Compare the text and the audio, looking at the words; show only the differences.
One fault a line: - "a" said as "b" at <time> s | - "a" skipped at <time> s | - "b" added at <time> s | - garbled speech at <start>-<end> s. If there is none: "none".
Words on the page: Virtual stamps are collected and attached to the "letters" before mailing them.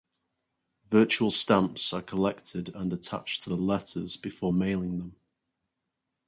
none